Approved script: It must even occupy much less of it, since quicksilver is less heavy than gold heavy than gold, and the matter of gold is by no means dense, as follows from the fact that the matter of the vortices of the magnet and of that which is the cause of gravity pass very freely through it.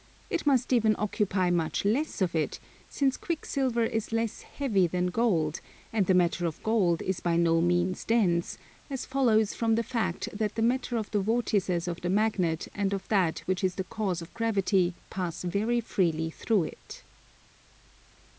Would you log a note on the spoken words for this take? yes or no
yes